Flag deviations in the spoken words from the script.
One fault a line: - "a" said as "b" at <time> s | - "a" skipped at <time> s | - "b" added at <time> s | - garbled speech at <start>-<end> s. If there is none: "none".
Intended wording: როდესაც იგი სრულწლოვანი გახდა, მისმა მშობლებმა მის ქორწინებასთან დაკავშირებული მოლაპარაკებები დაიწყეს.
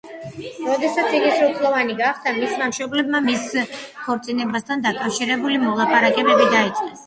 none